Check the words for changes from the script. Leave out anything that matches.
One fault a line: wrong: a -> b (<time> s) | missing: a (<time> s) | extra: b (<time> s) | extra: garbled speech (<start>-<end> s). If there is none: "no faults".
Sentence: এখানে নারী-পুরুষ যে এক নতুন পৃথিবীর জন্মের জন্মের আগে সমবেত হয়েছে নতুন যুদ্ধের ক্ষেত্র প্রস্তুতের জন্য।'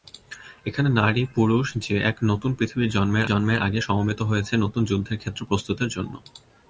no faults